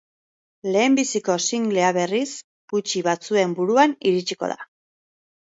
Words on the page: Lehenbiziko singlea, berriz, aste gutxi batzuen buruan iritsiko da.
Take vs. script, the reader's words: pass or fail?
fail